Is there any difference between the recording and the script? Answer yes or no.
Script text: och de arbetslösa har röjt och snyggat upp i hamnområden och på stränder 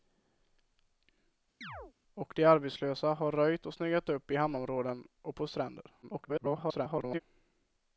yes